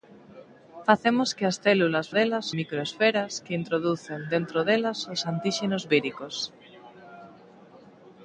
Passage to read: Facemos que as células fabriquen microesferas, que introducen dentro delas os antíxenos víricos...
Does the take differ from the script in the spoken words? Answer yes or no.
yes